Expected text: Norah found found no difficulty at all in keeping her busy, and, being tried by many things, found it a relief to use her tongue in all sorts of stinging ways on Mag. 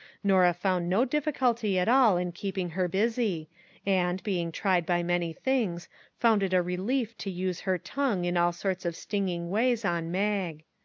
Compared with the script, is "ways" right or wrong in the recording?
right